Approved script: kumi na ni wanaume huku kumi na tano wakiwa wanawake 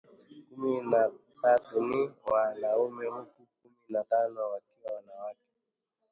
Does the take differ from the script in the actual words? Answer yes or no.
yes